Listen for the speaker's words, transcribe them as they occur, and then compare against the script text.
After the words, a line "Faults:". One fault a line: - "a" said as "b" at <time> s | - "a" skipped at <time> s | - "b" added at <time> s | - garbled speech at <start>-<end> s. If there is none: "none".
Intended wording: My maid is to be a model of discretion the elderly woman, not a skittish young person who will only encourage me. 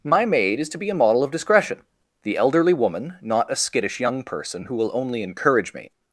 My maid is to be a model of discretion the elderly woman, not a skittish young person who will only encourage me.
Faults:
none